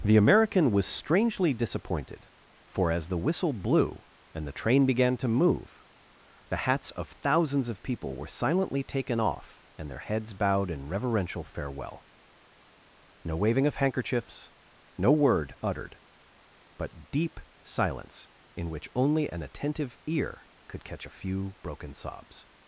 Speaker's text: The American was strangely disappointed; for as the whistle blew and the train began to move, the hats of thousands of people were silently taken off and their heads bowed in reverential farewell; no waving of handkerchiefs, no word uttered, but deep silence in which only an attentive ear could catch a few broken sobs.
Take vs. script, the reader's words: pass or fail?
pass